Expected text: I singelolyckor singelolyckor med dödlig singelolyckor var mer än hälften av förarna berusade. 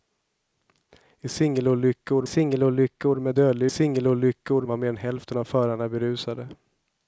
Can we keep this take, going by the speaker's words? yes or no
yes